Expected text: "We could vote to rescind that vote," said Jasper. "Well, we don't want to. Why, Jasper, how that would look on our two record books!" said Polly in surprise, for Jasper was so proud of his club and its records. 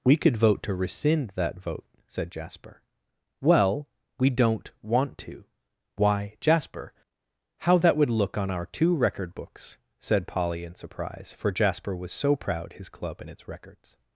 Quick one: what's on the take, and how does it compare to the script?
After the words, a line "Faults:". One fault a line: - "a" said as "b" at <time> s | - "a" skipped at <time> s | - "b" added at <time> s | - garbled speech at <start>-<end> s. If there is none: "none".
"We could vote to rescind that vote," said Jasper. "Well, we don't want to. Why, Jasper, how that would look on our two record books!" said Polly in surprise, for Jasper was so proud his club and its records.
Faults:
- "of" skipped at 12.7 s